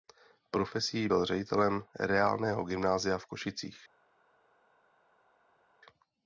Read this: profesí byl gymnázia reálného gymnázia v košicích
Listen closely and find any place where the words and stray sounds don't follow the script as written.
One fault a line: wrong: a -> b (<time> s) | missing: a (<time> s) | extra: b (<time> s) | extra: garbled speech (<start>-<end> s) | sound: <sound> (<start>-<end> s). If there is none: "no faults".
wrong: gymnázia -> ředitelem (1.2 s)